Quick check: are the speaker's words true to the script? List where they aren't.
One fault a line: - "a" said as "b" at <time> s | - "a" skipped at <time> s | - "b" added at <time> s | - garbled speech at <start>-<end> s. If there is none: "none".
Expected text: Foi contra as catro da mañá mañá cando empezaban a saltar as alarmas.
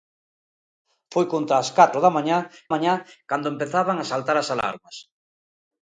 none